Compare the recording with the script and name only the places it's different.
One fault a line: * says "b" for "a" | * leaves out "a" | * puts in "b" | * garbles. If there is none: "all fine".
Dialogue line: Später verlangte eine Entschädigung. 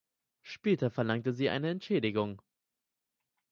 * puts in "sie"